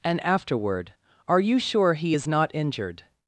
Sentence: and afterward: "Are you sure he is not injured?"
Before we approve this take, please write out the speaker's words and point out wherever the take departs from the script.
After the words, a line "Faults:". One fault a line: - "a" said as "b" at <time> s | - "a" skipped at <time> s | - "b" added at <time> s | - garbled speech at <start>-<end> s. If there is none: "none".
and afterward: "Are you sure he is not injured?"
Faults:
none